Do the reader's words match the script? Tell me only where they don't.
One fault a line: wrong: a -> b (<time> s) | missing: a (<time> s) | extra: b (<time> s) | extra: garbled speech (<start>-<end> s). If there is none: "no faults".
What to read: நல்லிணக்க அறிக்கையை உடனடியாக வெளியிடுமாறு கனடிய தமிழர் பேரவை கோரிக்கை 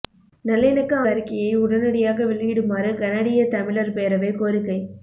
no faults